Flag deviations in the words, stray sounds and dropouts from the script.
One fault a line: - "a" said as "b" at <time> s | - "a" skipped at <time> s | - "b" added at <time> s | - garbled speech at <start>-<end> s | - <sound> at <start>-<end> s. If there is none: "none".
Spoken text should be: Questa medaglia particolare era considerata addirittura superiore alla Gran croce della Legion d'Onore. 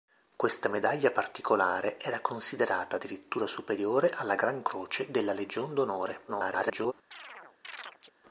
- garbled speech at 6.3-6.9 s
- chirp at 7.1-8.1 s